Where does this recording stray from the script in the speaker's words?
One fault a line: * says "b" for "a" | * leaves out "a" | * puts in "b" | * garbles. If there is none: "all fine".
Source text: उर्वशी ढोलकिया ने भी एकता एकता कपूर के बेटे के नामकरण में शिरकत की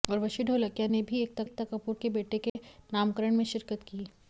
all fine